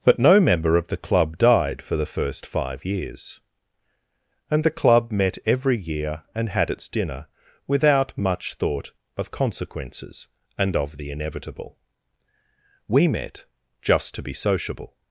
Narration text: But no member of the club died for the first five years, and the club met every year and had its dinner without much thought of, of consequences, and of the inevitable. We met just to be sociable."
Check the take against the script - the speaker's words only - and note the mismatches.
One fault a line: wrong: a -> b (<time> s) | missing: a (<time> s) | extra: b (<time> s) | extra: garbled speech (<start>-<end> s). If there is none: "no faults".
missing: of (9.3 s)